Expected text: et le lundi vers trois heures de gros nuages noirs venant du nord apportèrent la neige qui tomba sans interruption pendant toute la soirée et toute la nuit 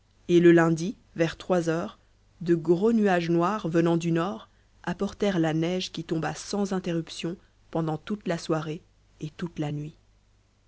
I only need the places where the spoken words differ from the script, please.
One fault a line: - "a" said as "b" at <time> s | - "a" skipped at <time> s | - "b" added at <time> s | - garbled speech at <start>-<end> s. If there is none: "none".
none